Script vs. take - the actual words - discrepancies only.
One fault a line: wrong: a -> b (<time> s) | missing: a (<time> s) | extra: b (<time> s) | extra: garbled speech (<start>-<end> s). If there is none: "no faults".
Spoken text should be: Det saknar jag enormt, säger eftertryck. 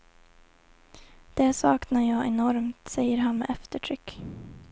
extra: han med (3.2 s)